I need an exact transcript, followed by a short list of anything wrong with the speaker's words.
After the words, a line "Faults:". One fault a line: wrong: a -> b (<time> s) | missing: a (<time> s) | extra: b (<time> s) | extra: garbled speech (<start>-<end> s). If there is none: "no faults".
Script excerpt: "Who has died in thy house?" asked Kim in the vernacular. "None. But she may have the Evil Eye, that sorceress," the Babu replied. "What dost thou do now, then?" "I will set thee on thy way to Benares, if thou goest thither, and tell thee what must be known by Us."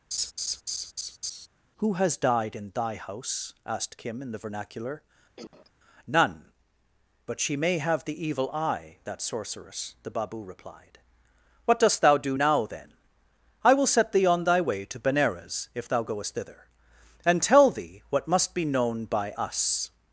"Who has died in thy house?" asked Kim in the vernacular. "None. But she may have the Evil Eye, that sorceress," the Babu replied. "What dost thou do now, then?" "I will set thee on thy way to Benares, if thou goest thither, and tell thee what must be known by Us."
Faults:
no faults